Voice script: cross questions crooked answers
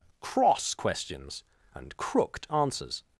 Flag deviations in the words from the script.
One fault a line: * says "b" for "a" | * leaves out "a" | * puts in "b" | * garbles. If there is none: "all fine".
* puts in "and"